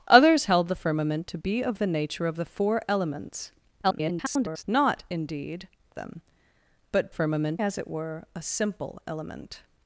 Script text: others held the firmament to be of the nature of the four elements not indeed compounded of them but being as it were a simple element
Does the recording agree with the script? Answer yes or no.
no